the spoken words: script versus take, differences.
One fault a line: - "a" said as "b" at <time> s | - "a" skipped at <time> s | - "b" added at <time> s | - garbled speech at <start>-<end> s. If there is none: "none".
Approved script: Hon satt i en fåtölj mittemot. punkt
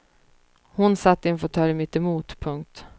none